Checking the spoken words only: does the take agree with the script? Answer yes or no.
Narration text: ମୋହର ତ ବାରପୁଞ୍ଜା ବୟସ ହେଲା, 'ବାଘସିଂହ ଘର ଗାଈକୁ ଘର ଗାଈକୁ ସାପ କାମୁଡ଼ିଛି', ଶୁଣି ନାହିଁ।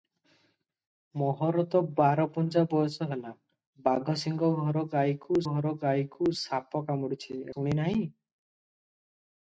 yes